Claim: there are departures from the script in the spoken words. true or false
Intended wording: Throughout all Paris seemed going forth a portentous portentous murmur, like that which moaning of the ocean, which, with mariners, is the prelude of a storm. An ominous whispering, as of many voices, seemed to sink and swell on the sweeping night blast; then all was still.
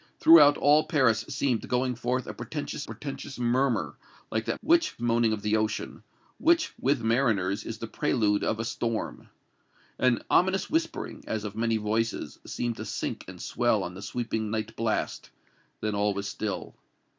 false